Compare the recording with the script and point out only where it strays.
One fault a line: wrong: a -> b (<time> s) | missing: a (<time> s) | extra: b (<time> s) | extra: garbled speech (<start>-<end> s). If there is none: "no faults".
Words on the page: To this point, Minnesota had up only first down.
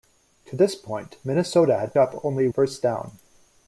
no faults